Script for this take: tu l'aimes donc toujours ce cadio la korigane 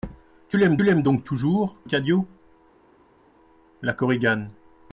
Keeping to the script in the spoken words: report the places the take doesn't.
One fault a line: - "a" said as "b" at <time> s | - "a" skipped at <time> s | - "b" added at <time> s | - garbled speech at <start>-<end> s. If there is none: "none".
- "l'aimes" added at 0.8 s
- "ce" skipped at 1.8 s